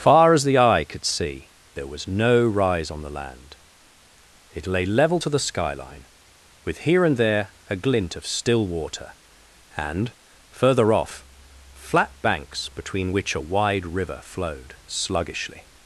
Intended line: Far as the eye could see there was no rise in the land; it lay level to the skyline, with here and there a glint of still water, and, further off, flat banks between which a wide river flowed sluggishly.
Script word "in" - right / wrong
wrong